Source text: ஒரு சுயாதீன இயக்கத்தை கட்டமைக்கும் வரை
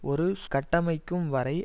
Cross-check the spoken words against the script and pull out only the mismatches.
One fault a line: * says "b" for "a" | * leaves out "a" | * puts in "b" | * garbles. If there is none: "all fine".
* leaves out "சுயாதீன இயக்கத்தை"